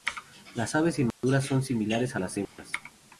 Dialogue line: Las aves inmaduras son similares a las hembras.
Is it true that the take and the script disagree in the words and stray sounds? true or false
true